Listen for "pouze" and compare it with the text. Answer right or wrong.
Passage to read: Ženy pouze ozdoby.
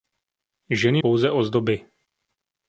right